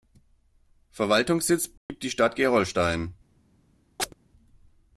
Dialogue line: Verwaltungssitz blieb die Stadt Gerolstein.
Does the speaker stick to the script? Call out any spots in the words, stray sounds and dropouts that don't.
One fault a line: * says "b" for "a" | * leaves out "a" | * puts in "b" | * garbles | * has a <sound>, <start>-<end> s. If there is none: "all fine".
* has a dropout, 1.8-1.9 s
* has a chirp, 4.0-4.1 s